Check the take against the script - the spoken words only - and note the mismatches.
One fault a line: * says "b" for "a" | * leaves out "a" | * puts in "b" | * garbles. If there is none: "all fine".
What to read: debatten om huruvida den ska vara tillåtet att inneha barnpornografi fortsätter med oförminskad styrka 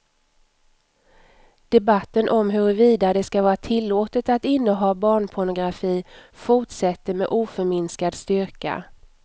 * says "det" for "den"